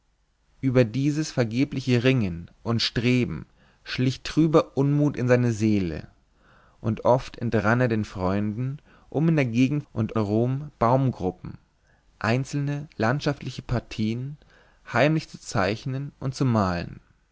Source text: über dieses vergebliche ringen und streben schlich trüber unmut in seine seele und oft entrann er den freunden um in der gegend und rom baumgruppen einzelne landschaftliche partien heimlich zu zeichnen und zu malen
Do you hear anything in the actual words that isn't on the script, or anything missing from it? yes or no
no